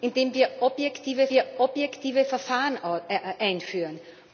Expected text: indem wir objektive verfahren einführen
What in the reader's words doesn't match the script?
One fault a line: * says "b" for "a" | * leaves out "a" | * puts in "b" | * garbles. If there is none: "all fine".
* puts in "wir objektive"